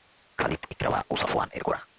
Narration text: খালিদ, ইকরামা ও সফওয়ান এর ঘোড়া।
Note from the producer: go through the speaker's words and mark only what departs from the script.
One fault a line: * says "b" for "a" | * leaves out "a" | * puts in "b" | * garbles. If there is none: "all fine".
all fine